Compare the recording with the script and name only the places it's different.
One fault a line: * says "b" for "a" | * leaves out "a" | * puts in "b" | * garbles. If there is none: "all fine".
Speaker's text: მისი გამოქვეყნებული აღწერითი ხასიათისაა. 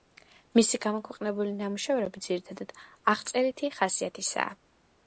* puts in "ნამუშევრები ძირითადად"